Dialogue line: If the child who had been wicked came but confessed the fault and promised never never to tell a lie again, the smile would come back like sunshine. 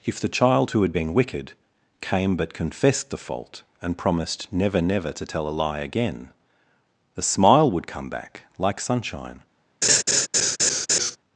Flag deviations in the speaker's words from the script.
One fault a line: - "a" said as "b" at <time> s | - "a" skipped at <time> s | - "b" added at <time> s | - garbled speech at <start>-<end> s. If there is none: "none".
none